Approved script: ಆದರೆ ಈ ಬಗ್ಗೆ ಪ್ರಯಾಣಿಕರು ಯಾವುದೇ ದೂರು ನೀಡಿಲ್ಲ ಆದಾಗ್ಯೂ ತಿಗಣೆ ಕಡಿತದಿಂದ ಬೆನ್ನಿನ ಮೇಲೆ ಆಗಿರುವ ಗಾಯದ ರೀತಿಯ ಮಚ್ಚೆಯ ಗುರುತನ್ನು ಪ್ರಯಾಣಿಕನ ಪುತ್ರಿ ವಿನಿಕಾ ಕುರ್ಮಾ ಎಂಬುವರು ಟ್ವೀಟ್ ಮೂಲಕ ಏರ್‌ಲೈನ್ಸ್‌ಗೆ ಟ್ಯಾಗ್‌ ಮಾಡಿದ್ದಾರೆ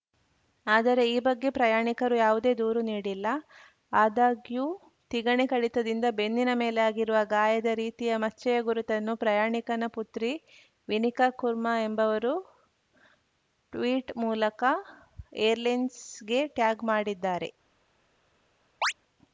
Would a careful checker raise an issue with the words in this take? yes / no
no